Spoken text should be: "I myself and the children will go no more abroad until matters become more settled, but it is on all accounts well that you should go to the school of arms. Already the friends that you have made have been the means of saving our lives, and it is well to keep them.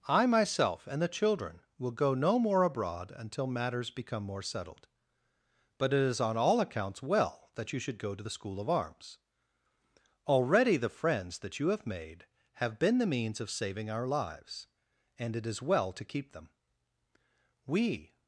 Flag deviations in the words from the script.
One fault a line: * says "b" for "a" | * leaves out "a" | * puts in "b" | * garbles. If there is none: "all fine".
* puts in "We"